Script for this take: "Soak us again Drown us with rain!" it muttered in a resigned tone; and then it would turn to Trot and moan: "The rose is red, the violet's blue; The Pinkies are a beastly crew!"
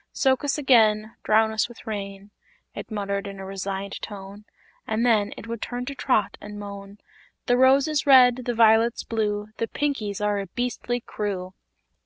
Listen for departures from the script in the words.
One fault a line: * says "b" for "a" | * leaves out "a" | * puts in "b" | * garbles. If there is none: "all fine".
all fine